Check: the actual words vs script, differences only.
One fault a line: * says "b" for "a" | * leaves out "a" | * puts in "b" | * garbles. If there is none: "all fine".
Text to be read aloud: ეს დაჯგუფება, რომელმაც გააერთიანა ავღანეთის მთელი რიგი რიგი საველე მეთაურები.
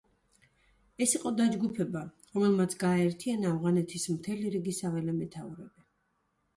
* puts in "იყო"
* leaves out "რიგი"